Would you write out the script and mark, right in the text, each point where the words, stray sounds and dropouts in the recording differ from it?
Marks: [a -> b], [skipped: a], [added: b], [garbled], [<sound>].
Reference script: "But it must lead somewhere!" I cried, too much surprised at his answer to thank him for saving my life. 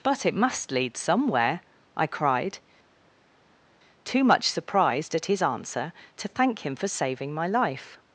"But it must lead somewhere!" I cried, too much surprised at his answer to thank him for saving my life.